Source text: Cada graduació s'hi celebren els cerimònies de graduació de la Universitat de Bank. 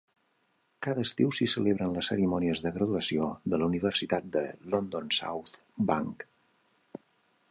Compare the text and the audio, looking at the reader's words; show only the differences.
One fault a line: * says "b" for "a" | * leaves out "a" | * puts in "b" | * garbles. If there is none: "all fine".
* says "estiu" for "graduació"
* says "les" for "els"
* puts in "London South"